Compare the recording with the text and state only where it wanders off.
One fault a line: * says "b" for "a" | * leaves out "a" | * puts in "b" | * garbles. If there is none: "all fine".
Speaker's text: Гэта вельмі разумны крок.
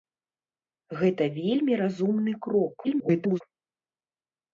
* garbles